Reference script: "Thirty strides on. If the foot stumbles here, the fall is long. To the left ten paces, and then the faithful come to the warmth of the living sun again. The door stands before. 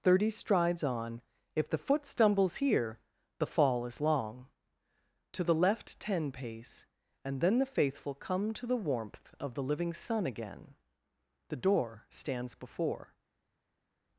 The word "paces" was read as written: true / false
false